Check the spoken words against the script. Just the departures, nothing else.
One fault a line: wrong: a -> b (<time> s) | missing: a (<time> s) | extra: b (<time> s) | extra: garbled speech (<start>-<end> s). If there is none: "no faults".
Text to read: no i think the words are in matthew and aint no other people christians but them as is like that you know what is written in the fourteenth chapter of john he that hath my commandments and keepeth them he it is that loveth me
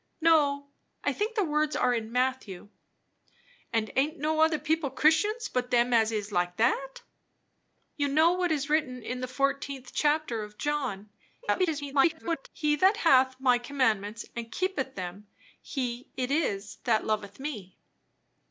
extra: garbled speech (11.4-12.5 s)